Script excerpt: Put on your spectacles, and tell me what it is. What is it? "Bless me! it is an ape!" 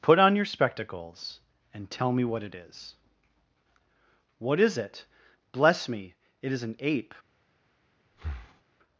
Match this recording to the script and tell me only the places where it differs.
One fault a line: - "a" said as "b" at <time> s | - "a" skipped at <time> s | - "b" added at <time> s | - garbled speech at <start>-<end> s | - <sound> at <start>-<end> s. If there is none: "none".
- breath at 8.1-8.6 s